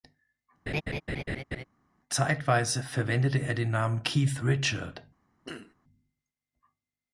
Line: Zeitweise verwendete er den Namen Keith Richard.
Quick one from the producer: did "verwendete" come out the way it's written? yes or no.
yes